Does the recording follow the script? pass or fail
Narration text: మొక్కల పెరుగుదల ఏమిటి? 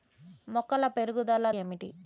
pass